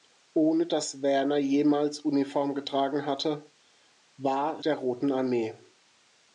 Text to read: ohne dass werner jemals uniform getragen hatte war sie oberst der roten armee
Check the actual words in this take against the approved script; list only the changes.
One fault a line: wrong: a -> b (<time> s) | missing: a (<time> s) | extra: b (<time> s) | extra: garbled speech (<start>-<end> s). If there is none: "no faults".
missing: sie oberst (4.6 s)